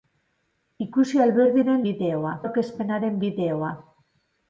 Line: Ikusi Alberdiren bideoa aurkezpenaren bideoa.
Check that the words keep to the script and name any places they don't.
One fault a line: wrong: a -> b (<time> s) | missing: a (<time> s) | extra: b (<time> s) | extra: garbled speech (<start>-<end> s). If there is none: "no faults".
no faults